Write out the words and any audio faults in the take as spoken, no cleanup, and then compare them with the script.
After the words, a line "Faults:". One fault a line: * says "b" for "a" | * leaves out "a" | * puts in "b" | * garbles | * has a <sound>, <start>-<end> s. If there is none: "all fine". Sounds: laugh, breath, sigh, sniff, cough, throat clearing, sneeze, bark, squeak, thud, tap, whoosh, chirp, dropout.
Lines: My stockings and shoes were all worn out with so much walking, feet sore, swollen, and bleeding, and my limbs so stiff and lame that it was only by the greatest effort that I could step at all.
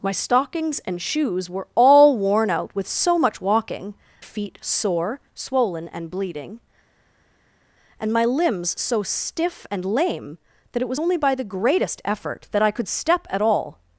My stockings and shoes were all worn out with so much walking, feet sore, swollen, and bleeding, and my limbs so stiff and lame that it was only by the greatest effort that I could step at all.
Faults:
all fine